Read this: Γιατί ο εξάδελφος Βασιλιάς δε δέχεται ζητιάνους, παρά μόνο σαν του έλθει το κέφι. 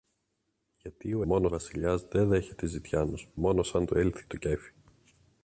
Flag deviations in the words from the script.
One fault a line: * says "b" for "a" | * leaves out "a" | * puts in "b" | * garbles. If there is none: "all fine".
* says "μόνο" for "εξάδελφος"
* leaves out "παρά"